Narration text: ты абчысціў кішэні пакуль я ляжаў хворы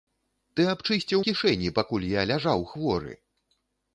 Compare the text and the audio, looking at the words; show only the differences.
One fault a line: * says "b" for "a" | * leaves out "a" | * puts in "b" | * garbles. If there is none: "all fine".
all fine